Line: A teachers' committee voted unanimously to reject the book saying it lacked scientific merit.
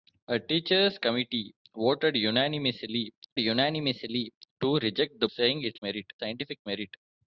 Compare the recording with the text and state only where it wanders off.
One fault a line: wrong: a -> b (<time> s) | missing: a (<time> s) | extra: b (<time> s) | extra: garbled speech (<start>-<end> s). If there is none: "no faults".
extra: unanimously (3.4 s)
missing: book (5.3 s)
wrong: lacked -> merit (5.8 s)